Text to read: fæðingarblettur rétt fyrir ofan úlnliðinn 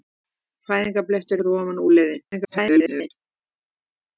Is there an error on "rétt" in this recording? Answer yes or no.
yes